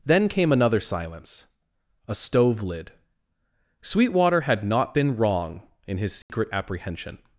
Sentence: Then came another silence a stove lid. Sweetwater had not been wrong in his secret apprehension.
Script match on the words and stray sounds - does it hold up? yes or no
no